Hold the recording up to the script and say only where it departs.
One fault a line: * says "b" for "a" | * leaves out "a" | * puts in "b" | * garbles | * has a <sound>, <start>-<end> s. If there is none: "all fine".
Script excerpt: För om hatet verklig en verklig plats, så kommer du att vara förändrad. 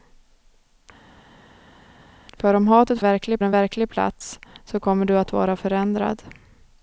all fine